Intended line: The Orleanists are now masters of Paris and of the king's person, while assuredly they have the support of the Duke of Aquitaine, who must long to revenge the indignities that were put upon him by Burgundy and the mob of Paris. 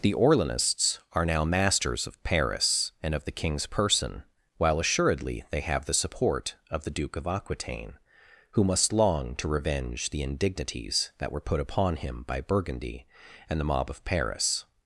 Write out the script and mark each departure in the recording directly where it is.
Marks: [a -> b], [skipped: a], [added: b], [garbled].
The Orleanists are now masters of Paris and of the king's person, while assuredly they have the support of the Duke of Aquitaine, who must long to revenge the indignities that were put upon him by Burgundy and the mob of Paris.